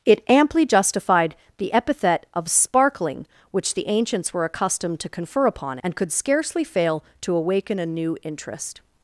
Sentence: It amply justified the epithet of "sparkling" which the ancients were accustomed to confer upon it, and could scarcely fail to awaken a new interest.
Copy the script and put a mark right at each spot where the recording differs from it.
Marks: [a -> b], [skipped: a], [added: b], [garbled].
It amply justified the epithet of "sparkling" which the ancients were accustomed to confer upon [skipped: it,] and could scarcely fail to awaken a new interest.